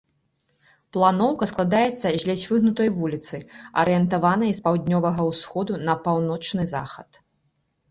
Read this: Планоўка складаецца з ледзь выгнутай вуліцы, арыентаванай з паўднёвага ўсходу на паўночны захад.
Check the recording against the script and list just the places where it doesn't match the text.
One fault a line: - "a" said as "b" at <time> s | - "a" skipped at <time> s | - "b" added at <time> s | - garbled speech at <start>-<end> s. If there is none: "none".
none